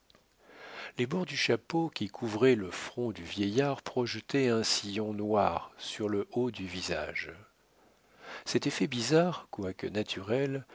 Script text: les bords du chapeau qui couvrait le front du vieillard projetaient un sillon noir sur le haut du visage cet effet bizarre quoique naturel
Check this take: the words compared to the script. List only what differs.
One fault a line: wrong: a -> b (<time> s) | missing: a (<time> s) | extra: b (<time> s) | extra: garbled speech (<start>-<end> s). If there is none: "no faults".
no faults